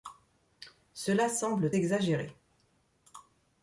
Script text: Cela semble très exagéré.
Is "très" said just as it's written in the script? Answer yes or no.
no